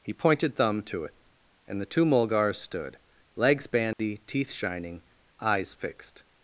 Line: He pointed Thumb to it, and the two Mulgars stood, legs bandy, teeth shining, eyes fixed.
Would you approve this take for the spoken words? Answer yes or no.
yes